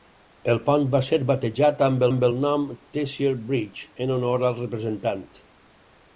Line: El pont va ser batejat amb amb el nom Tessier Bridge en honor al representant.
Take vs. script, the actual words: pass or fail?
pass